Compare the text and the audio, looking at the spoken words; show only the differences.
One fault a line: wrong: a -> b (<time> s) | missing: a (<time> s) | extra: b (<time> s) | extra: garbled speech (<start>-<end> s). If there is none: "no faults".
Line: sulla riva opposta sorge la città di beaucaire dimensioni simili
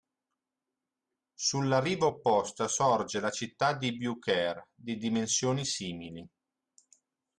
extra: di (4.7 s)